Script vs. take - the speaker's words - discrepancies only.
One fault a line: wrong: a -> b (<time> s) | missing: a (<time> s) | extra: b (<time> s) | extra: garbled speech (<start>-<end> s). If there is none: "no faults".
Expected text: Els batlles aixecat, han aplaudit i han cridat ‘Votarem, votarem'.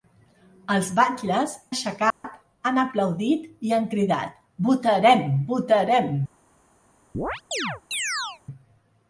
no faults